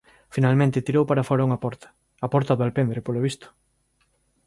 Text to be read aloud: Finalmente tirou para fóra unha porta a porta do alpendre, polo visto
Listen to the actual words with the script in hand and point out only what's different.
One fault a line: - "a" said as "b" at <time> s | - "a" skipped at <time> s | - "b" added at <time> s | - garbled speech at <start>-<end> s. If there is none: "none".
none